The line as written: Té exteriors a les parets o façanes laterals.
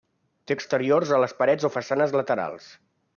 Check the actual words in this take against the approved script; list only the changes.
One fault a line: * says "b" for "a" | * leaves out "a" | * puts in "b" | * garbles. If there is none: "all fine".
all fine